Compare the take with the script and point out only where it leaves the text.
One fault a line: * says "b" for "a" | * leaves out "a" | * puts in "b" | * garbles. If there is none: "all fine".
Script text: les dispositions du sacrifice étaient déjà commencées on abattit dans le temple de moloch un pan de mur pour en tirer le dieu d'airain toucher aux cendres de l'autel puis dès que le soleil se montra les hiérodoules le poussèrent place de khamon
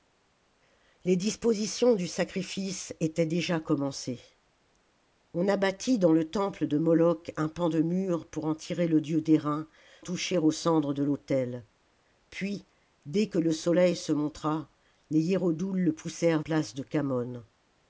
all fine